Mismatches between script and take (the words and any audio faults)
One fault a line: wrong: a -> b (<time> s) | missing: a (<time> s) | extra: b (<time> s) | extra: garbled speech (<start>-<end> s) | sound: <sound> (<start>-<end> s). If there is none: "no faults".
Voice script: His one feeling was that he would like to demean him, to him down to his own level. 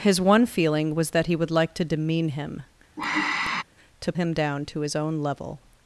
sound: sigh (3.0-3.6 s)